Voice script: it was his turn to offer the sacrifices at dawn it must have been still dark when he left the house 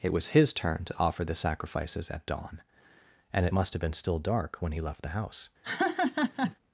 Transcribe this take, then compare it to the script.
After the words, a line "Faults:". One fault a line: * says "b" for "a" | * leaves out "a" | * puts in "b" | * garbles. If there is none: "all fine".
it was his turn to offer the sacrifices at dawn and it must have been still dark when he left the house
Faults:
* puts in "and"